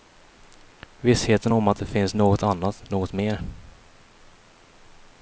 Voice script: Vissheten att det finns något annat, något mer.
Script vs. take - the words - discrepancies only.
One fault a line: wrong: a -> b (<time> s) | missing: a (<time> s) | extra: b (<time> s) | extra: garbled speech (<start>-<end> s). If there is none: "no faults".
extra: om (1.5 s)